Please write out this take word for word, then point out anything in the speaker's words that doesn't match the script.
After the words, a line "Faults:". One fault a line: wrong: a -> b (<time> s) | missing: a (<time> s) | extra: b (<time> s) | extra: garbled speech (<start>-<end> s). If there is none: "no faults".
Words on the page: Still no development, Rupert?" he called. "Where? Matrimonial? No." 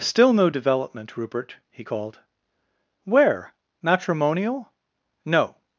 Still no development, Rupert?" he called. "Where? Matrimonial? No."
Faults:
no faults